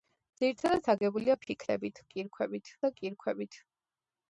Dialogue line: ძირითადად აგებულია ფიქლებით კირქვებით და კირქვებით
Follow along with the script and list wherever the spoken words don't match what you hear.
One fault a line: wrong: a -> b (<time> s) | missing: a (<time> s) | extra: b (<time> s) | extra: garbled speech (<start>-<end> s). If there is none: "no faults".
no faults